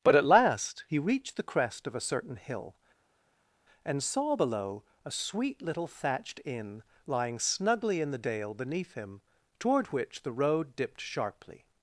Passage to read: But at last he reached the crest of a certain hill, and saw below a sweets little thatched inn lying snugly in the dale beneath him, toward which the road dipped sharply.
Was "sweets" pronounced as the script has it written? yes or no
no